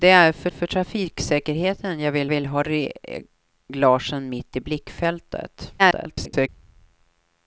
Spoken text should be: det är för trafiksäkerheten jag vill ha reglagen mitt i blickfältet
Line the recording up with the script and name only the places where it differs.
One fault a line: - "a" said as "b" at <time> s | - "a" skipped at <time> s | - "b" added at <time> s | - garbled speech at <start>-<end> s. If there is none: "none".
- "för" added at 0.5 s
- "vill" added at 2.3 s
- garbled speech at 5.8-6.5 s